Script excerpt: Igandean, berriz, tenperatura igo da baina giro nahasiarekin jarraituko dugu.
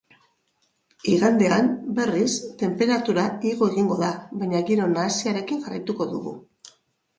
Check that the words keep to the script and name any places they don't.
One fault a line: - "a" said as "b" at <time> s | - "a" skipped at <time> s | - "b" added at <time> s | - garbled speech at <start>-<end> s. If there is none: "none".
- "egingo" added at 3.8 s